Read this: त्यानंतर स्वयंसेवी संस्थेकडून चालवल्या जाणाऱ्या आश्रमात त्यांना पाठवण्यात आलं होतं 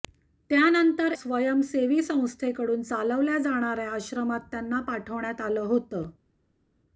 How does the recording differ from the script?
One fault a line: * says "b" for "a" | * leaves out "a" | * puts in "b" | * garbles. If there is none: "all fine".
all fine